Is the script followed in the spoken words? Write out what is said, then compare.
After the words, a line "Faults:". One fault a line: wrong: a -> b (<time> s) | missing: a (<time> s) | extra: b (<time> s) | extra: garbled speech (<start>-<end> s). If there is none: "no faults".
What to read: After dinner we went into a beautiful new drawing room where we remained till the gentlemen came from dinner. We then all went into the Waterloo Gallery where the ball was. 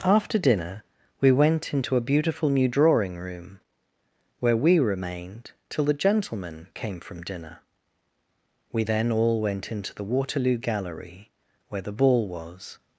After dinner we went into a beautiful new drawing room where we remained till the gentlemen came from dinner. We then all went into the Waterloo Gallery where the ball was.
Faults:
no faults